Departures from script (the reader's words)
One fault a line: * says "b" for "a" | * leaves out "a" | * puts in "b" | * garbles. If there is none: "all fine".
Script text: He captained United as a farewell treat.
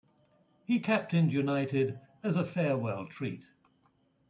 all fine